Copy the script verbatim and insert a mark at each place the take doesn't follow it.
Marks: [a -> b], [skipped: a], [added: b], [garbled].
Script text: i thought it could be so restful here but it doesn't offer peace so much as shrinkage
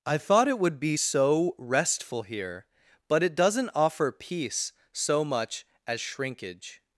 i thought it [could -> would] be so restful here but it doesn't offer peace so much as shrinkage